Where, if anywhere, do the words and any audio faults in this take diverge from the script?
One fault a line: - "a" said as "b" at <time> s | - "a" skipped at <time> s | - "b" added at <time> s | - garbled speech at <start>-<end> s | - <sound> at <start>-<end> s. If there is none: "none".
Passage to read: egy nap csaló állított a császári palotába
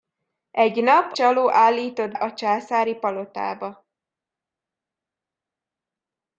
none